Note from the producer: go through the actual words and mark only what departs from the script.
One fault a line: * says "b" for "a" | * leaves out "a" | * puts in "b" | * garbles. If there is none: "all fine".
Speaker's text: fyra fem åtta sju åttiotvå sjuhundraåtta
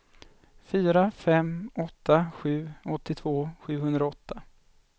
all fine